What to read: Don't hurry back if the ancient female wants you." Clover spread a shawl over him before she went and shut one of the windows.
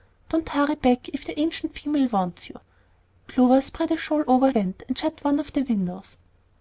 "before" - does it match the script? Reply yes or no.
no